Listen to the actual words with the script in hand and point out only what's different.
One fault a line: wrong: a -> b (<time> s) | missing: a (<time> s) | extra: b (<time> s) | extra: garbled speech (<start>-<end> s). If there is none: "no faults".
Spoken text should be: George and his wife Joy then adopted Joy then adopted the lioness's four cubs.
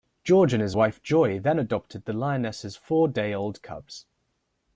missing: Joy then adopted (2.0 s)
extra: day old (3.1 s)